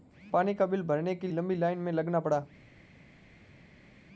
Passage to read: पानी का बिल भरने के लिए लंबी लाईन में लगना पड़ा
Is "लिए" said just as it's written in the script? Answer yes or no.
no